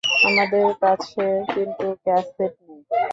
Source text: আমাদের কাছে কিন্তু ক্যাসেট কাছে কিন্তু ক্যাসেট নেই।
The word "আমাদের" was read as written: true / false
true